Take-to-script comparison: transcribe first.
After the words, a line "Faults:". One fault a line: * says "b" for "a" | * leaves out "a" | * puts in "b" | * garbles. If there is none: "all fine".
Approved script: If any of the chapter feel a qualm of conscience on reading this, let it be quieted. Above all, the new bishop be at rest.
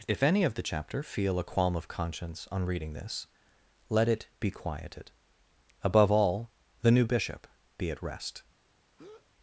If any of the chapter feel a qualm of conscience on reading this, let it be quieted. Above all, the new bishop be at rest.
Faults:
all fine